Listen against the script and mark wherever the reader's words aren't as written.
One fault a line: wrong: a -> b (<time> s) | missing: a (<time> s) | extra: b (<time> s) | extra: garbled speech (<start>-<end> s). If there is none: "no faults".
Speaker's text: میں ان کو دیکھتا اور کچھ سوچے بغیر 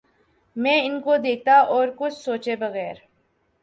no faults